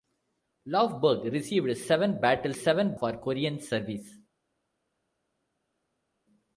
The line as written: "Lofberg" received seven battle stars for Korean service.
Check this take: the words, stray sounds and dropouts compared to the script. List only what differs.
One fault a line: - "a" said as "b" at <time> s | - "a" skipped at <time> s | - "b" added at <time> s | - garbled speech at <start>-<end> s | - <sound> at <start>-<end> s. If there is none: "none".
- "stars" said as "seven" at 2.5 s